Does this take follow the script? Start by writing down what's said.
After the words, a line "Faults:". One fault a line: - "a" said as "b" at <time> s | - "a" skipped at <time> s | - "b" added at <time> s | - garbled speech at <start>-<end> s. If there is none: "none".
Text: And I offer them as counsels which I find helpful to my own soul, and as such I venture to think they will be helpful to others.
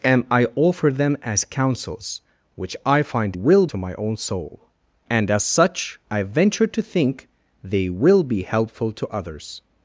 And I offer them as counsels which I find will to my own soul, and as such I venture to think they will be helpful to others.
Faults:
- "helpful" said as "will" at 3.3 s